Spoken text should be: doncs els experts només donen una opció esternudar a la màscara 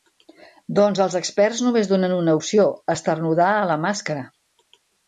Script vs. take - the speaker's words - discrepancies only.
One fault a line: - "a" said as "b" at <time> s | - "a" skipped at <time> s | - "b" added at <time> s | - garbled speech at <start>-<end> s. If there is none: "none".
none